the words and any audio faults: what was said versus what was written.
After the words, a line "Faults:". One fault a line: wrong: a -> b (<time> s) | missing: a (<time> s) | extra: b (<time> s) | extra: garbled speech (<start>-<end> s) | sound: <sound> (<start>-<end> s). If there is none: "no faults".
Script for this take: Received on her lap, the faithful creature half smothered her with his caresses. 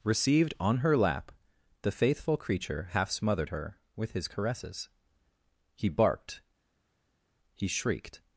Received on her lap, the faithful creature half smothered her with his caresses. He barked, he shrieked
Faults:
extra: He barked he shrieked (5.7 s)